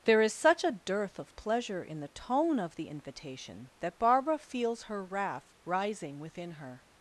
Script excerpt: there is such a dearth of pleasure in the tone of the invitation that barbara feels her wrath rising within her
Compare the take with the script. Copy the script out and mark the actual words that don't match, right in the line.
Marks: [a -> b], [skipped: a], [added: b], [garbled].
there is such a dearth of pleasure in the tone of the invitation that barbara feels her wrath rising within her